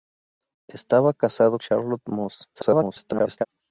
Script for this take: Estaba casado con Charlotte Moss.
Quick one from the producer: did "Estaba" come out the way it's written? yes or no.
yes